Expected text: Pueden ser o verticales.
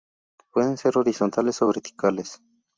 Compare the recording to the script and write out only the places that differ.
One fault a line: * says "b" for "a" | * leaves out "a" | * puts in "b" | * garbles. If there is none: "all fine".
* puts in "horizontales"